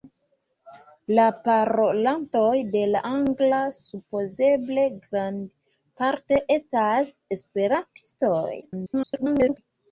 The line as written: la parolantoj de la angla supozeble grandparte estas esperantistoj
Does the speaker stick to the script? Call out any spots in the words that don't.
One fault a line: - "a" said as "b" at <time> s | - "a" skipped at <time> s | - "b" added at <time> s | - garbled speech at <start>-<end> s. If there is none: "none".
- garbled speech at 8.6-9.6 s